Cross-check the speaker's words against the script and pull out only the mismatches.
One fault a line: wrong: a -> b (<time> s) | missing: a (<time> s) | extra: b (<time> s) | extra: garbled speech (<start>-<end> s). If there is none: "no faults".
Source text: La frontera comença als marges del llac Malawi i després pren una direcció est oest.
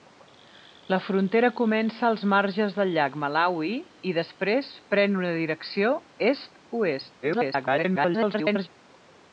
extra: garbled speech (7.2-8.7 s)